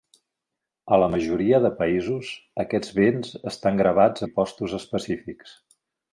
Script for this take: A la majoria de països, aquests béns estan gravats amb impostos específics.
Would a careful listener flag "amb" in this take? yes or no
yes